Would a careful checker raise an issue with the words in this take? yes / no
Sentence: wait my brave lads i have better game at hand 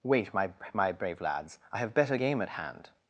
yes